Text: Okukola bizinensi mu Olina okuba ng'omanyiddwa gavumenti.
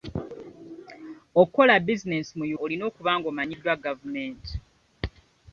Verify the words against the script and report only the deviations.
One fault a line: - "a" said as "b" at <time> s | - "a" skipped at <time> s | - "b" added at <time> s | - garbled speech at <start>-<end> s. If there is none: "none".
none